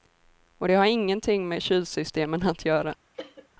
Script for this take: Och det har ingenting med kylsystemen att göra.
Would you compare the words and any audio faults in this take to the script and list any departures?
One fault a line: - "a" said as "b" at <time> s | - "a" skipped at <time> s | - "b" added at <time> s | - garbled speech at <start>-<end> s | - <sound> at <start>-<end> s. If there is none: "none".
- cough at 3.1-3.5 s